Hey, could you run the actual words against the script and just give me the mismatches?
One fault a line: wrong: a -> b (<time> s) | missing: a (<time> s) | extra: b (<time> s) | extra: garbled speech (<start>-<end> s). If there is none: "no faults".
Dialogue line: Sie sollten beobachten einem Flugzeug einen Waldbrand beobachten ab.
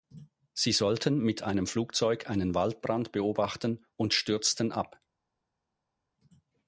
wrong: beobachten -> mit (1.2 s)
extra: und stürzten (4.0 s)